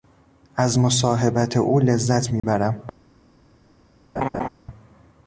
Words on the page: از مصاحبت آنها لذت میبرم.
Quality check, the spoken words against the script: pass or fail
fail